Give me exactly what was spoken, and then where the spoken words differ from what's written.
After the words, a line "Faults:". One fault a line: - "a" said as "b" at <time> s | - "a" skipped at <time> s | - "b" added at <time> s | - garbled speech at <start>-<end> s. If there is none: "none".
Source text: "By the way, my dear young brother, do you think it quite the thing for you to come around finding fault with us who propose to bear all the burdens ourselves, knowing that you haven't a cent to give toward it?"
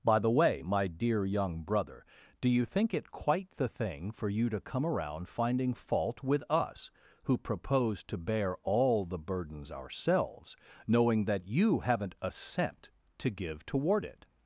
"By the way, my dear young brother, do you think it quite the thing for you to come around finding fault with us who propose to bear all the burdens ourselves, knowing that you haven't a cent to give toward it?"
Faults:
none